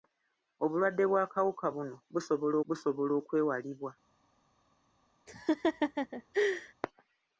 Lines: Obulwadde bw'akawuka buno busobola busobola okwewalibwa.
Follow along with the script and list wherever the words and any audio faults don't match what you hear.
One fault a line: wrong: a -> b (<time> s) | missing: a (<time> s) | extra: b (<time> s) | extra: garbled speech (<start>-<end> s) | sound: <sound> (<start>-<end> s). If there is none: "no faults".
sound: laugh (5.3-6.7 s)